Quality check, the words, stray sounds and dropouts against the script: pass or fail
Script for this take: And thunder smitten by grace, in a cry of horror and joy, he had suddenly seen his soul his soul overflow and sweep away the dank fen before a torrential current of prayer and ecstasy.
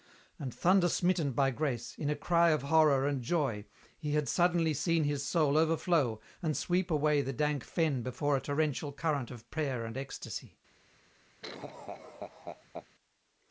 fail